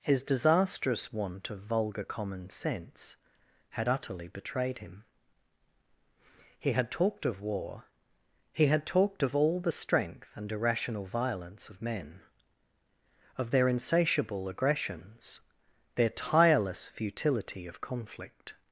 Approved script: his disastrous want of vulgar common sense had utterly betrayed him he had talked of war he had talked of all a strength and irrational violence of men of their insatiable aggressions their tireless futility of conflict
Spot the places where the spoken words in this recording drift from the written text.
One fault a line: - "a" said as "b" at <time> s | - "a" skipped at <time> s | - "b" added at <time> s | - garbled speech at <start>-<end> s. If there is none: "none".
- "a" said as "the" at 9.6 s